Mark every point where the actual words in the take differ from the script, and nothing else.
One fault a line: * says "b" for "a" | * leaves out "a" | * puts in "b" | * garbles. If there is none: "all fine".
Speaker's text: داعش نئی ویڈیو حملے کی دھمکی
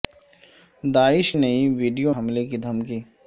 all fine